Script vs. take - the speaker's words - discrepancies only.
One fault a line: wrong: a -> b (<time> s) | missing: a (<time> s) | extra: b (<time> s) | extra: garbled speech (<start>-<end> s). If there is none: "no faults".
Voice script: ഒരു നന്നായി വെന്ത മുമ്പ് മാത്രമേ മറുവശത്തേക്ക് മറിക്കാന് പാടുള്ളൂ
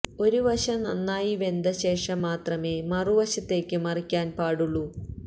extra: വശം (0.5 s)
wrong: മുമ്പ് -> ശേഷം (1.8 s)